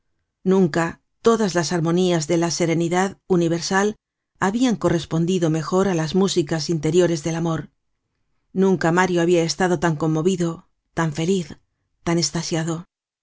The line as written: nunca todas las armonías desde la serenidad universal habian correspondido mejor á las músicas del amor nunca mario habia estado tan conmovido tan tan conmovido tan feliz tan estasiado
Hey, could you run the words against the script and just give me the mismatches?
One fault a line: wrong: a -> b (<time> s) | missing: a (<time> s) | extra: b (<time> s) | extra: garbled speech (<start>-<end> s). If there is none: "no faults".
wrong: desde -> de (2.3 s)
extra: interiores (6.8 s)
missing: tan conmovido tan (11.1 s)